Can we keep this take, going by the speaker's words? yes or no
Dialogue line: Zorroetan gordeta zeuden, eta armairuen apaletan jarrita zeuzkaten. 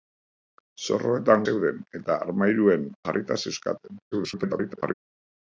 no